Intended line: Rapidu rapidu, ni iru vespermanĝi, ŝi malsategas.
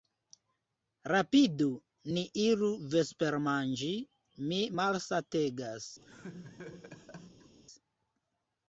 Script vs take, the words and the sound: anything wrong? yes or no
yes